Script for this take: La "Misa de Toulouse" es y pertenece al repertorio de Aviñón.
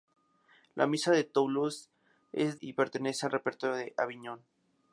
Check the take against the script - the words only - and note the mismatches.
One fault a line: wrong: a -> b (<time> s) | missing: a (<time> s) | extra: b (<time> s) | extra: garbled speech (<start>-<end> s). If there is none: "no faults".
no faults